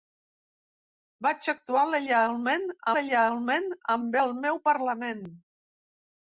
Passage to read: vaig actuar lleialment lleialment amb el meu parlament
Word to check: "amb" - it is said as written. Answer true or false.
true